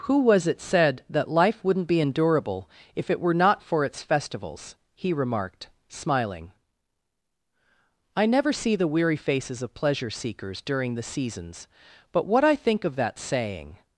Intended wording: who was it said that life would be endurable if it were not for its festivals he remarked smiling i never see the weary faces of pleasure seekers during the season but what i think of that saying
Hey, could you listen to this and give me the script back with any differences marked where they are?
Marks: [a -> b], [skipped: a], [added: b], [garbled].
who was it said that life [would -> wouldn't] be endurable if it were not for its festivals he remarked smiling i never see the weary faces of pleasure seekers during the [season -> seasons] but what i think of that saying